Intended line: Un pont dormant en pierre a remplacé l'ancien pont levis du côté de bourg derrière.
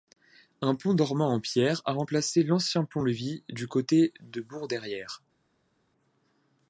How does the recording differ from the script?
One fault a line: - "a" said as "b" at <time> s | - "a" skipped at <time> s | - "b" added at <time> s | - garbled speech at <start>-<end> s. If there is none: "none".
none